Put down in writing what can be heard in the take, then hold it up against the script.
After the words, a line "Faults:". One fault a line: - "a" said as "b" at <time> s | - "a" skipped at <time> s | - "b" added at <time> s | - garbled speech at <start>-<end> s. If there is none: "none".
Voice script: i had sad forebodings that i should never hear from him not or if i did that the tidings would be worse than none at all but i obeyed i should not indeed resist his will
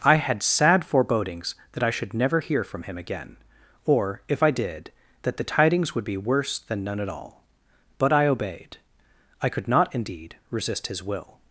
i had sad forebodings that i should never hear from him again or if i did that the tidings would be worse than none at all but i obeyed i could not indeed resist his will
Faults:
- "not" said as "again" at 3.0 s
- "should" said as "could" at 9.5 s